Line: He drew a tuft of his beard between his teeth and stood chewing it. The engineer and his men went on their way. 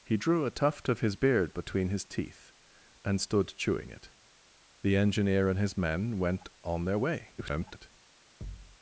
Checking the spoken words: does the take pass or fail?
fail